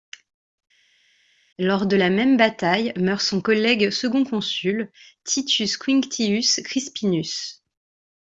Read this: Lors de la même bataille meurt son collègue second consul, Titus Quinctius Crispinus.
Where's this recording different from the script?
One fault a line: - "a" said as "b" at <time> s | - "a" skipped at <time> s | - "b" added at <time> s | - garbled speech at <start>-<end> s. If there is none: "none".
none